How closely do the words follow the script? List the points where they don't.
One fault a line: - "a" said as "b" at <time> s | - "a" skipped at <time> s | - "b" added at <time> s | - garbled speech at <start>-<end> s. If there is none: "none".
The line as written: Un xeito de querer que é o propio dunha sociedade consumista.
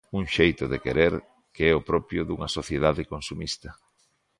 none